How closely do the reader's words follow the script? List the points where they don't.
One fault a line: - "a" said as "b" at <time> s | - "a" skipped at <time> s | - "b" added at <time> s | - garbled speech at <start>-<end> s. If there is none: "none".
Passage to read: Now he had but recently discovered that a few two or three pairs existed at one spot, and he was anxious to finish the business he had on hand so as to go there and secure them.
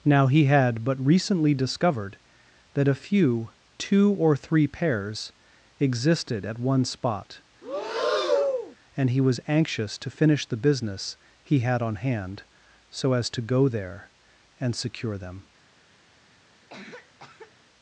none